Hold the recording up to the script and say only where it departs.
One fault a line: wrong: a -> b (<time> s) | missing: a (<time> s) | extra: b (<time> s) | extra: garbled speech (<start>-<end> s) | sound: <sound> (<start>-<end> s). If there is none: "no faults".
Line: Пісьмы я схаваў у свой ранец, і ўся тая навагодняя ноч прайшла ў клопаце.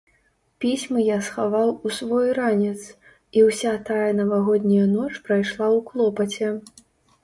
no faults